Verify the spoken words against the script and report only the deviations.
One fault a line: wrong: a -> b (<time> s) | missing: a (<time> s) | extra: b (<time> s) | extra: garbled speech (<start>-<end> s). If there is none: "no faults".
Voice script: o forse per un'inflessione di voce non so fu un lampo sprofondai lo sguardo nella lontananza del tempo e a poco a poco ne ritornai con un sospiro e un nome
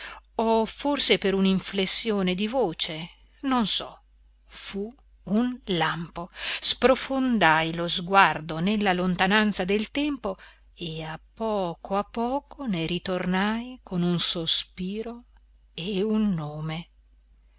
no faults